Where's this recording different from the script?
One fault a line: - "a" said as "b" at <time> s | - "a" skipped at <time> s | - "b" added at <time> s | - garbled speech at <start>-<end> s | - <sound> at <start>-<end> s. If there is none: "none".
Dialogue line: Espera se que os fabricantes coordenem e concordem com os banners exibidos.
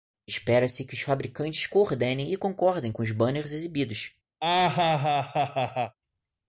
- laugh at 4.4-6.0 s